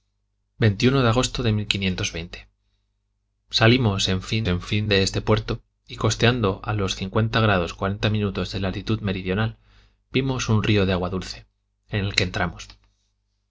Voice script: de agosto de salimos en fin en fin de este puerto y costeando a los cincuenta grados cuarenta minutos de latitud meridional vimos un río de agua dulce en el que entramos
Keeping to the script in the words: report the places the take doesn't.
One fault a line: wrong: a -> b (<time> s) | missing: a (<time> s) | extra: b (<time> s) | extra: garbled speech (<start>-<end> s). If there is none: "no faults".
no faults